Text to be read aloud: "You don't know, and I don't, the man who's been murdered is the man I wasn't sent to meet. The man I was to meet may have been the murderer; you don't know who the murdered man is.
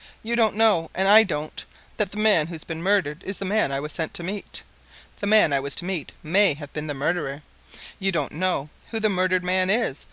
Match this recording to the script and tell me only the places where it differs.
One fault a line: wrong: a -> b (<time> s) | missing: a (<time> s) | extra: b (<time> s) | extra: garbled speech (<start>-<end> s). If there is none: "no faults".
extra: that (2.0 s)
wrong: wasn't -> was (3.8 s)